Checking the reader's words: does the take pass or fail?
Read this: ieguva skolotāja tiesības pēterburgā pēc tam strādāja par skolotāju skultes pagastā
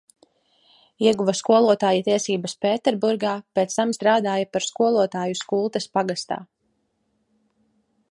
pass